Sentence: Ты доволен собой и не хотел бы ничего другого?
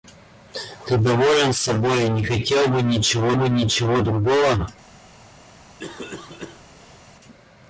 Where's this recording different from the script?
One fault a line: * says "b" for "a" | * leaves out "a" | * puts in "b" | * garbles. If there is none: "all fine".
* puts in "бы ничего"